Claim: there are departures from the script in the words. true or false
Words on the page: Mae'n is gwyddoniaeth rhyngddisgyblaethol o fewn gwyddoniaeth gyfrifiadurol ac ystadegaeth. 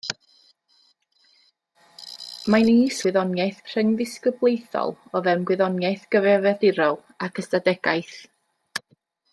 false